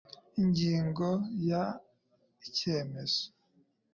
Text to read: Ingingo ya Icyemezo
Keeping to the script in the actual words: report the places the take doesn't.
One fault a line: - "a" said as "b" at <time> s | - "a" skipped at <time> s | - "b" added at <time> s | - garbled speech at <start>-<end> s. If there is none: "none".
none